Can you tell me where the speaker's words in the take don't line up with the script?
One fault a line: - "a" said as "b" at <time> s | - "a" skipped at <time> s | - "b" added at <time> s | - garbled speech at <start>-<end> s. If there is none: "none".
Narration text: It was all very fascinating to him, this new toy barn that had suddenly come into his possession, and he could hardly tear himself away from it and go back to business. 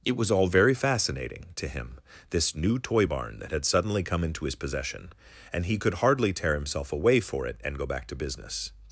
- "from" said as "for" at 7.2 s